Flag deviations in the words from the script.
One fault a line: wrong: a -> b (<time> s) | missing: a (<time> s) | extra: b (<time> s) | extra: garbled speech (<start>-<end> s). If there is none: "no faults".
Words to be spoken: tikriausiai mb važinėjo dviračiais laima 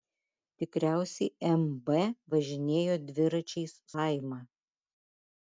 no faults